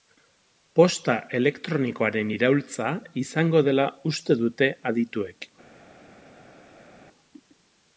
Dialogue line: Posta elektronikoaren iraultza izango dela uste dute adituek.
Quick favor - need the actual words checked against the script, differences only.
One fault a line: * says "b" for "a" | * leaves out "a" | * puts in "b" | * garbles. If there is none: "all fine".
all fine